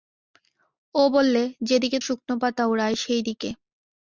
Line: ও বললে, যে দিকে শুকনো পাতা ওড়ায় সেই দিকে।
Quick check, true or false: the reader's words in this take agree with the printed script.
true